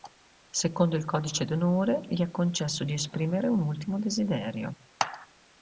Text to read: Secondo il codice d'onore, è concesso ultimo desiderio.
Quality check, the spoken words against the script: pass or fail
fail